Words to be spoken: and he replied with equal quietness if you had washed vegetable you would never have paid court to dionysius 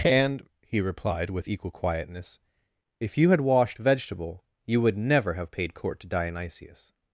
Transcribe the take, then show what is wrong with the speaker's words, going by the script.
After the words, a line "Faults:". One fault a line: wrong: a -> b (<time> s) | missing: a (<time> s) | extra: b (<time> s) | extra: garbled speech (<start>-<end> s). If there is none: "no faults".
and he replied with equal quietness if you had washed vegetable you would never have paid court to dionysius
Faults:
no faults